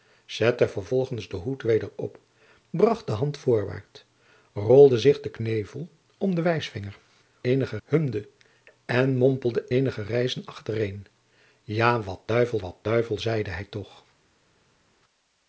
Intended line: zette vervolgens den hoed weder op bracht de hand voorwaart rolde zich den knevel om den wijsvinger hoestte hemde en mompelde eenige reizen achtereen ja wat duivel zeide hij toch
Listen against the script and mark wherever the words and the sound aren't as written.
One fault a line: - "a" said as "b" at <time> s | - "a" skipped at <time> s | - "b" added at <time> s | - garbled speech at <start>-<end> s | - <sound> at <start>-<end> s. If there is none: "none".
- "hoestte" said as "eenige" at 7.4 s
- "wat duivel" added at 12.6 s